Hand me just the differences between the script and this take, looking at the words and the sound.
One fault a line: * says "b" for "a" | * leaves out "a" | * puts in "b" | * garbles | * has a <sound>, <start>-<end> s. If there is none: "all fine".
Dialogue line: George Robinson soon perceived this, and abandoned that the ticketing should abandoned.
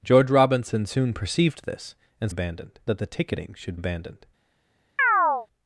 * has a chirp, 5.0-5.5 s